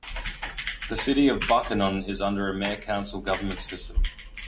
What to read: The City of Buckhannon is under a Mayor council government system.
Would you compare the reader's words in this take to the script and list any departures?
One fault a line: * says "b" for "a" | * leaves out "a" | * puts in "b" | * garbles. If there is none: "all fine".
all fine